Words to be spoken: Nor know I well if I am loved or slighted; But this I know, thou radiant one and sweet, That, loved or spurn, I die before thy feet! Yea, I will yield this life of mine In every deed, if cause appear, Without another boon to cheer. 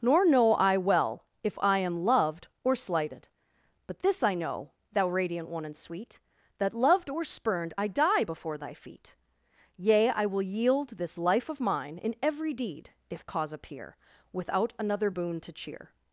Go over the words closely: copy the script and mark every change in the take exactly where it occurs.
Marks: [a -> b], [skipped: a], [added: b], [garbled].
Nor know I well if I am loved or slighted; But this I know, thou radiant one and sweet, That, loved or [spurn, -> spurned] I die before thy feet! Yea, I will yield this life of mine In every deed, if cause appear, Without another boon to cheer.